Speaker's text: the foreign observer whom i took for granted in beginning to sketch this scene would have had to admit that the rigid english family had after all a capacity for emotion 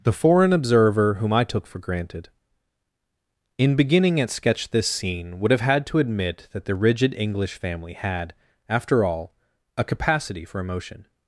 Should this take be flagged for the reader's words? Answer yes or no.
yes